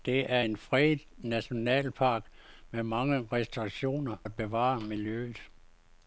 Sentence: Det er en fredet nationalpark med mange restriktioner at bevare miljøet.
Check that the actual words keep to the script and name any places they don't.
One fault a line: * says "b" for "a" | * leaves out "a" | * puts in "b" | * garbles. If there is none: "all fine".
all fine